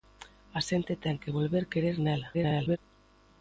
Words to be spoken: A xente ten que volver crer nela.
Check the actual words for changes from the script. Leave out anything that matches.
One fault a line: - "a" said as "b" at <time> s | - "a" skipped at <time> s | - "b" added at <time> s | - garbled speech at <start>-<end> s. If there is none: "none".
- garbled speech at 2.3-2.8 s